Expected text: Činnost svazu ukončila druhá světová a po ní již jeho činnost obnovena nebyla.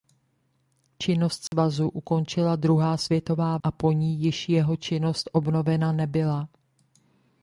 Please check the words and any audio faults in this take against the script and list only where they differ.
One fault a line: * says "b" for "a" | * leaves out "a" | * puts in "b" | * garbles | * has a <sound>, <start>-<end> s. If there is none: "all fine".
* has a dropout, 1.5-1.5 s